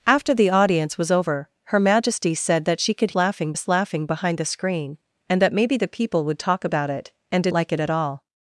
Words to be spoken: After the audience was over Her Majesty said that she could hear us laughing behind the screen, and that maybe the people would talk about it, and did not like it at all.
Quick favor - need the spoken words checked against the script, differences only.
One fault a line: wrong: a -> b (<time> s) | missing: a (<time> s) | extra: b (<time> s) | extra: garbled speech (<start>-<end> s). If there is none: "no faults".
wrong: hear -> laughing (3.1 s)
missing: not (7.5 s)